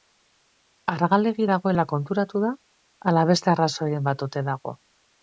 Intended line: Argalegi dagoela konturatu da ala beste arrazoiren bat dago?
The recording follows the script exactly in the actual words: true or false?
false